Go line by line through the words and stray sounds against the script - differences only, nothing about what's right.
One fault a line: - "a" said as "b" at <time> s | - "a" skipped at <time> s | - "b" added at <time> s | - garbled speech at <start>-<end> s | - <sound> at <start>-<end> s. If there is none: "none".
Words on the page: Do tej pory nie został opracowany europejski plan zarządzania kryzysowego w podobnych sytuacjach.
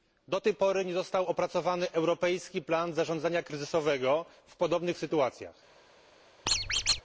- squeak at 6.5-7.0 s